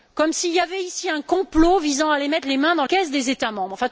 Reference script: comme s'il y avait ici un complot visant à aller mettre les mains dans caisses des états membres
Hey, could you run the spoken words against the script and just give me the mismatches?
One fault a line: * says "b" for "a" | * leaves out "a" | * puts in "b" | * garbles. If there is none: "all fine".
all fine